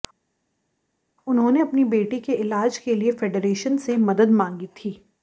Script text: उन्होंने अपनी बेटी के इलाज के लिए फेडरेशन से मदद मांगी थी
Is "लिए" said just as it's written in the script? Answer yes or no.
yes